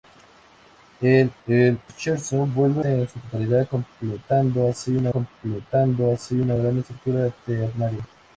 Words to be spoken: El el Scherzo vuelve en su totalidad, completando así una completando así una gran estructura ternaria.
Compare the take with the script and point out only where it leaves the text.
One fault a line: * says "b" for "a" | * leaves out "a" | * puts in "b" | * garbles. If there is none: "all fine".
all fine